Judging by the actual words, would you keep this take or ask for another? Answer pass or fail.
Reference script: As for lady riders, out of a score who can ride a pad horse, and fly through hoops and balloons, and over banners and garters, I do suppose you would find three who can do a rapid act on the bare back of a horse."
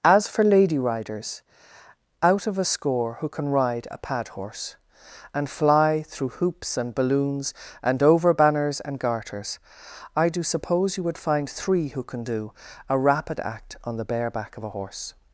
pass